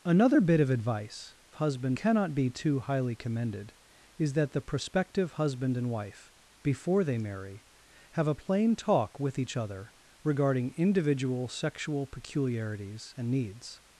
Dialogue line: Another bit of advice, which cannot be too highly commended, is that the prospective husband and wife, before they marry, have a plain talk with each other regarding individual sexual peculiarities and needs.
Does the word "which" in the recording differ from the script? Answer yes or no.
yes